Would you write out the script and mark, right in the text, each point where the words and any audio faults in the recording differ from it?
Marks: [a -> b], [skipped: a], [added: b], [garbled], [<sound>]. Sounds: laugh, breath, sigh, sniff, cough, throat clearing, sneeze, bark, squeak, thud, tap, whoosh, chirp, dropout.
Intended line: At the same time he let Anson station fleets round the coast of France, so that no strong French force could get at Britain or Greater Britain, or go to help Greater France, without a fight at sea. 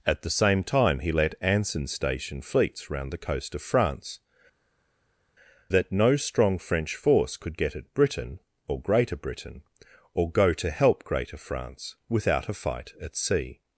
At the same time he let Anson station fleets round the coast of France, [skipped: so] that no strong French force could get at Britain or Greater Britain, or go to help Greater France, without a fight at sea.